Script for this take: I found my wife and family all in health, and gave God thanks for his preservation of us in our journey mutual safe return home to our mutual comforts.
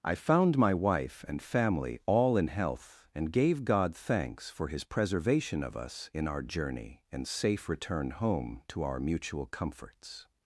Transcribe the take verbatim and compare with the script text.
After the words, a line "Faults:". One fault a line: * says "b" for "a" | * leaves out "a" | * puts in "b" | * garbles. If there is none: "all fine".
I found my wife and family all in health, and gave God thanks for his preservation of us in our journey and safe return home to our mutual comforts.
Faults:
* says "and" for "mutual"